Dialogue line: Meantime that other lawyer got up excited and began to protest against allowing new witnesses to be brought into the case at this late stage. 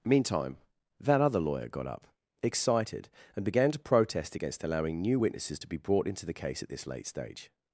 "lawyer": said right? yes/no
yes